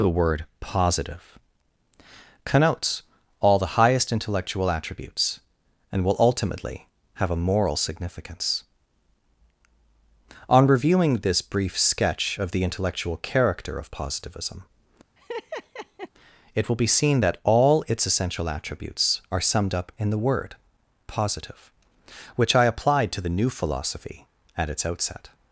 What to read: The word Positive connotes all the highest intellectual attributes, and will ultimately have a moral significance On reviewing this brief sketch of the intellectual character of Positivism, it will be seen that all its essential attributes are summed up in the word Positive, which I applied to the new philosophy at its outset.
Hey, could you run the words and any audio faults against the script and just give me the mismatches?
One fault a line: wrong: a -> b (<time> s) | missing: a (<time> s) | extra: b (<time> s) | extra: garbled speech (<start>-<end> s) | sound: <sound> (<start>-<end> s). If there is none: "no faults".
sound: laugh (15.2-16.1 s)